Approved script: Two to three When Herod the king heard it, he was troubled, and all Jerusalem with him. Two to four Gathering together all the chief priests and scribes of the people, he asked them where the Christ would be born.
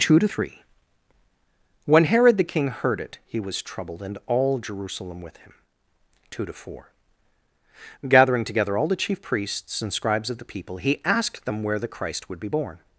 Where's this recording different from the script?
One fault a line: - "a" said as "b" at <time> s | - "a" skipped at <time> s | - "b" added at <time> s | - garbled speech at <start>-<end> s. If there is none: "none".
none